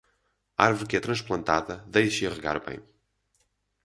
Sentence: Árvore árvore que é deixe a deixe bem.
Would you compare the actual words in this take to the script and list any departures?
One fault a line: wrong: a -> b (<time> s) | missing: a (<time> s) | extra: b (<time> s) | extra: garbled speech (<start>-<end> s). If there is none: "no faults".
missing: árvore (0.9 s)
extra: transplantada (1.0 s)
wrong: deixe -> regar (2.3 s)